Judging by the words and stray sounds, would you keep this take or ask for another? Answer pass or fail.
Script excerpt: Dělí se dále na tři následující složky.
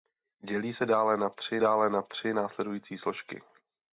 fail